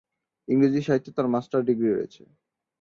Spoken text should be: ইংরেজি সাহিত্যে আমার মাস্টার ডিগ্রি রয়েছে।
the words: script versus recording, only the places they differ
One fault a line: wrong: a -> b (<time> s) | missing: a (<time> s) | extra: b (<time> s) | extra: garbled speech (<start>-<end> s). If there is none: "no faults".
wrong: আমার -> তার (1.2 s)